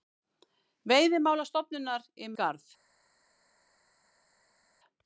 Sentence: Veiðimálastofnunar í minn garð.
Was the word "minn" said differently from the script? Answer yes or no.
yes